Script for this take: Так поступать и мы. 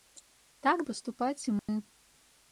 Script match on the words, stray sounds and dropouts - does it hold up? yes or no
no